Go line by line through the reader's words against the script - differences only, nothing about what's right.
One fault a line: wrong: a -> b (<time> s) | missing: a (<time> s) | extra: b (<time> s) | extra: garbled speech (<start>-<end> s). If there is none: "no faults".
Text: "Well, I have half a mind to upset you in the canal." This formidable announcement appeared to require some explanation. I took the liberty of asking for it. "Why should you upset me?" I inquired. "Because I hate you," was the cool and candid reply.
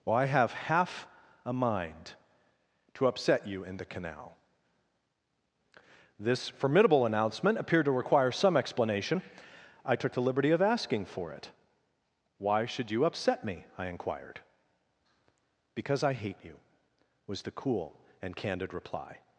no faults